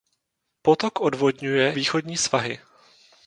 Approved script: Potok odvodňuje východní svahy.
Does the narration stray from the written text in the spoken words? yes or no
no